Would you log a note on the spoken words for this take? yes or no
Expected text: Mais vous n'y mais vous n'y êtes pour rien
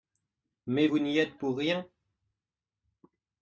yes